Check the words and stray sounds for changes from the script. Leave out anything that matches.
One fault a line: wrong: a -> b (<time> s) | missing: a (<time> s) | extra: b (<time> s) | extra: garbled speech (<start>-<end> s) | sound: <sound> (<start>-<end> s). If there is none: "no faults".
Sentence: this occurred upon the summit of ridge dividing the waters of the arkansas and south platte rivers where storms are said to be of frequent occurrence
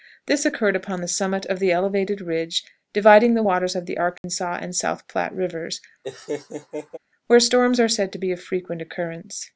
extra: the elevated (1.6 s)
sound: dropout (4.2-4.2 s)
sound: laugh (6.0-7.0 s)